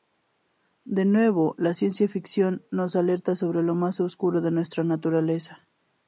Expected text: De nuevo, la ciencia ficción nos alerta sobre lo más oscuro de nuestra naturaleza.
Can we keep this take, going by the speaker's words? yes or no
yes